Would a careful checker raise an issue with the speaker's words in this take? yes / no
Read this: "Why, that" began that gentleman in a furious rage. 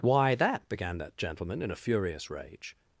no